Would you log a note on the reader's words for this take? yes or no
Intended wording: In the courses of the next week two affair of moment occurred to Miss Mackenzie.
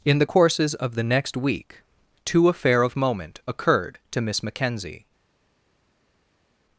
no